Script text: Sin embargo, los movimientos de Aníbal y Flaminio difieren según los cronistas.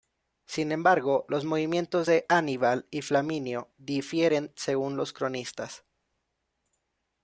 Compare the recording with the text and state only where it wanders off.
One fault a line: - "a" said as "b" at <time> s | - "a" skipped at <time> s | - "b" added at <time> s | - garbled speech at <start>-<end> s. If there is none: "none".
none